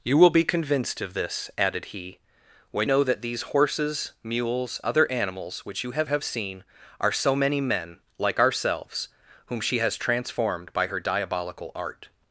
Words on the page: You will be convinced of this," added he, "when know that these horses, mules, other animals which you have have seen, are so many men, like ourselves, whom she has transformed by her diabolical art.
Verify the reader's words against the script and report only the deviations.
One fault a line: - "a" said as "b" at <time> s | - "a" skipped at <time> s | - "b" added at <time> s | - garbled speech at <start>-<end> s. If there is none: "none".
none